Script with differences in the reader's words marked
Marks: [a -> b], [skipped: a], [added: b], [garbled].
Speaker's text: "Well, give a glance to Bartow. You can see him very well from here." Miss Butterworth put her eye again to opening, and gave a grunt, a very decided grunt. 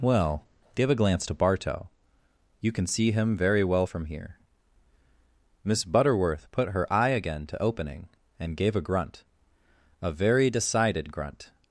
"Well, give a glance to Bartow. You can see him very well from here." Miss Butterworth put her eye again to opening, and gave a grunt, a very decided grunt.